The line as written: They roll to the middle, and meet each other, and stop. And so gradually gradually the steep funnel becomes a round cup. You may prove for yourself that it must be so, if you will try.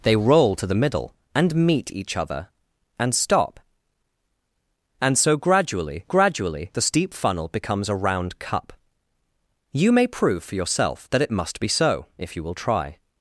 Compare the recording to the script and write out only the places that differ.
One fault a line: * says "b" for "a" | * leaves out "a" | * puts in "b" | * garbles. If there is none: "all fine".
all fine